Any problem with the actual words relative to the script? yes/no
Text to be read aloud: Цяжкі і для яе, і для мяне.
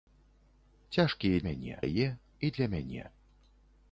yes